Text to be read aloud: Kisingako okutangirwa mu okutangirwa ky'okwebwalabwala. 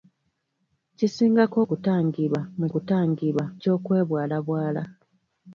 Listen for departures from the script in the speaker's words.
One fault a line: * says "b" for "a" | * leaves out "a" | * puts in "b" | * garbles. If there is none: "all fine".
all fine